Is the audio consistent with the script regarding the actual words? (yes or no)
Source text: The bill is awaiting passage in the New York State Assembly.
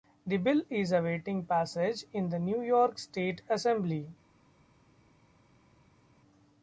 yes